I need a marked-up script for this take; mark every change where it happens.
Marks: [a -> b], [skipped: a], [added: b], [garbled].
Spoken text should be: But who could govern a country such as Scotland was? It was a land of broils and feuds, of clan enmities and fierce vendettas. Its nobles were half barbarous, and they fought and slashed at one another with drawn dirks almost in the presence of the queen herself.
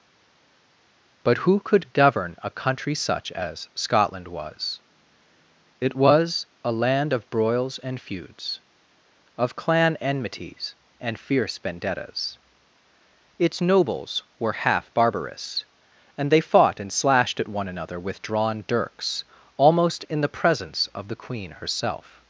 But who could govern a country such as Scotland was? It was a land of broils and feuds, of clan enmities and fierce vendettas. Its nobles were half barbarous, and they fought and slashed at one another with drawn dirks almost in the presence of the queen herself.